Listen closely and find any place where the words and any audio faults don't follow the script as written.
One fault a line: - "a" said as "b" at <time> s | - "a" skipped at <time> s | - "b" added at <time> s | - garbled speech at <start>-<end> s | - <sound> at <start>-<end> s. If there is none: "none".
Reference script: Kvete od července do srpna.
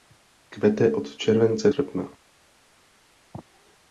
- "do" skipped at 1.7 s